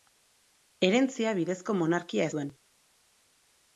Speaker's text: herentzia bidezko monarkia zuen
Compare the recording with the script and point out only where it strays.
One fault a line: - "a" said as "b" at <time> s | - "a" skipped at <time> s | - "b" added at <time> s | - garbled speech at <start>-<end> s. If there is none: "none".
none